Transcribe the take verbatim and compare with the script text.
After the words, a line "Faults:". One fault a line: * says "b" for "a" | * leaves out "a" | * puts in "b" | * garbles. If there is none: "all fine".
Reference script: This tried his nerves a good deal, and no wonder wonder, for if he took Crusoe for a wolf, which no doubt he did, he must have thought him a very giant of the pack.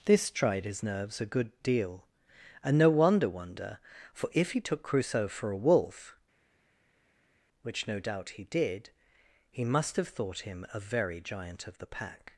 This tried his nerves a good deal, and no wonder wonder, for if he took Crusoe for a wolf, which no doubt he did, he must have thought him a very giant of the pack.
Faults:
all fine